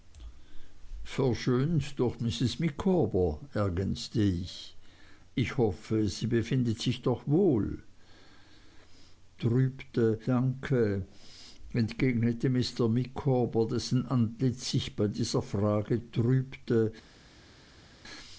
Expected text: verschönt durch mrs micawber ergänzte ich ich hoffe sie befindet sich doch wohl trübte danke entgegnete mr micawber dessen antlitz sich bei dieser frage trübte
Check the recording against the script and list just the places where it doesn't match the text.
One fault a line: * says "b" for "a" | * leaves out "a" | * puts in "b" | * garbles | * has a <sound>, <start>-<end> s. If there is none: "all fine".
all fine